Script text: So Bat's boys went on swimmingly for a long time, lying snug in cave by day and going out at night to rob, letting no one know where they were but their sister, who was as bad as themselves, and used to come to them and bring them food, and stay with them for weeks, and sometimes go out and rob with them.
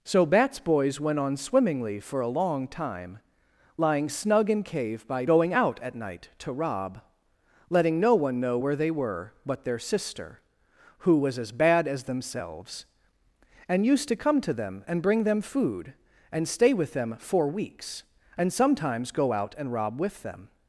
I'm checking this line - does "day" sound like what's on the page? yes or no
no